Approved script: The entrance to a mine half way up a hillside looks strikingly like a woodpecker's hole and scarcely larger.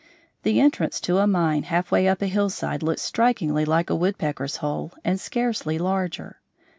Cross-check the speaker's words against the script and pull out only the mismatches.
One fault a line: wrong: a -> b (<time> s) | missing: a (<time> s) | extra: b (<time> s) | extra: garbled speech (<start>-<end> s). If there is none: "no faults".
no faults